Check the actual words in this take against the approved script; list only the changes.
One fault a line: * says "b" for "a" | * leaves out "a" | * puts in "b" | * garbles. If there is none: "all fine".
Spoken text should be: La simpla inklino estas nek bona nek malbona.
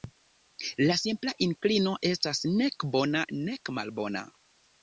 all fine